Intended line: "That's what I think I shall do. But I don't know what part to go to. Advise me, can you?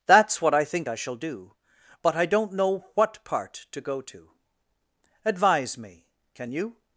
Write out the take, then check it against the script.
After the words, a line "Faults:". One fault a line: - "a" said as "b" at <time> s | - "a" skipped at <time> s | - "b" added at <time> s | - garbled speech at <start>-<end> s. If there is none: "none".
"That's what I think I shall do. But I don't know what part to go to. Advise me, can you?
Faults:
none